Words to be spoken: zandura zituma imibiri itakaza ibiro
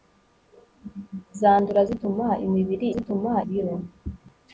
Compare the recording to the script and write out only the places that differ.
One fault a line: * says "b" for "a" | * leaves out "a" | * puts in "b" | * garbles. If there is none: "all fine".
* says "zituma" for "itakaza"